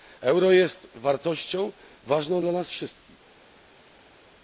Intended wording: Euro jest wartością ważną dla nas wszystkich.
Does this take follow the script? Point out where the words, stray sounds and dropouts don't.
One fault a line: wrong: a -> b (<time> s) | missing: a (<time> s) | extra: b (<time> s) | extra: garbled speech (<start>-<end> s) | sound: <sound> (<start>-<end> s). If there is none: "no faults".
no faults